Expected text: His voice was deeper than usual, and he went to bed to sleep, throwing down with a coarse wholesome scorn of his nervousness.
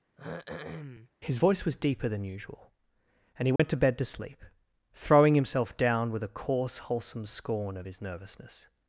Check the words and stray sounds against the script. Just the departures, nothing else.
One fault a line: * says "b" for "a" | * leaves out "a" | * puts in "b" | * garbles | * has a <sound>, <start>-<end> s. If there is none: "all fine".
* has a throat clearing, 0.2-1.1 s
* has a dropout, 3.6-3.6 s
* puts in "himself"